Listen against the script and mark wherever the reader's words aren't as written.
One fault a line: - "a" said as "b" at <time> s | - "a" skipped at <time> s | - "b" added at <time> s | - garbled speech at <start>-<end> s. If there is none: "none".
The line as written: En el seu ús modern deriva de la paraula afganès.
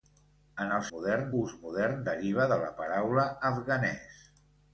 - "seu" said as "modern" at 0.9 s